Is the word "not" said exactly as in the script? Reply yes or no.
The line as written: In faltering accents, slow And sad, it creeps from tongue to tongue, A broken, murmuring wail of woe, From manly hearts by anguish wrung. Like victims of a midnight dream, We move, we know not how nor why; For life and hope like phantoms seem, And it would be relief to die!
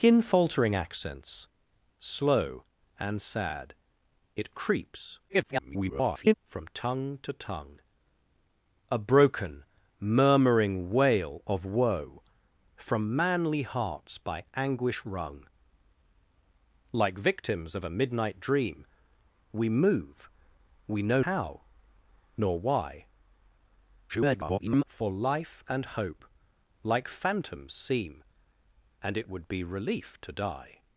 no